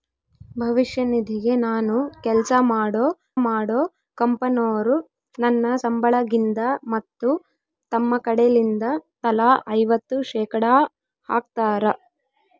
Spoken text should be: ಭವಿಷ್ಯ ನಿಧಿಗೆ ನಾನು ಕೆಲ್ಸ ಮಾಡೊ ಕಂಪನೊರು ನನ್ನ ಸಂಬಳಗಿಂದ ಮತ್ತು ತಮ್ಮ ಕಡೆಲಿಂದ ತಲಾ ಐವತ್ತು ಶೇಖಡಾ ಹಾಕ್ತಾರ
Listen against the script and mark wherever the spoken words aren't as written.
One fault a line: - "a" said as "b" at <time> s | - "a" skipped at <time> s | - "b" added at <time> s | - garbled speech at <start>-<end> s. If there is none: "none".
- "ಮಾಡೊ" added at 3.4 s